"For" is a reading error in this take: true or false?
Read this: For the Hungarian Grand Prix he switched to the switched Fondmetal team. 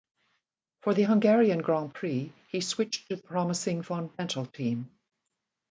false